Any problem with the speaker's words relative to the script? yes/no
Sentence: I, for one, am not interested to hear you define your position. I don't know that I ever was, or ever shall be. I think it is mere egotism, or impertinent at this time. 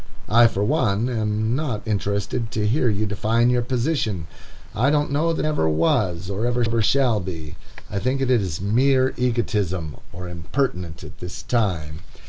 yes